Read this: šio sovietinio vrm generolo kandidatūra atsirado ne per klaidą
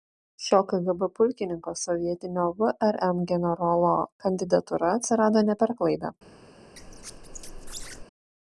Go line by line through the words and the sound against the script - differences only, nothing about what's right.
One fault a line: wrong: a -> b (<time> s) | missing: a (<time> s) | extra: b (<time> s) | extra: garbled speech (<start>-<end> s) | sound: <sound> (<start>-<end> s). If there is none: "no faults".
extra: kgb pulkininko (0.7 s)
sound: squeak (6.7-8.0 s)